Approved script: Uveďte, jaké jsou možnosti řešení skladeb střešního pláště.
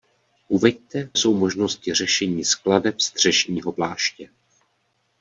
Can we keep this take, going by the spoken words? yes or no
no